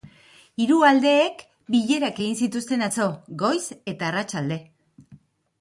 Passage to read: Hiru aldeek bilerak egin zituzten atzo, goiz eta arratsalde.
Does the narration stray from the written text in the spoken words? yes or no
no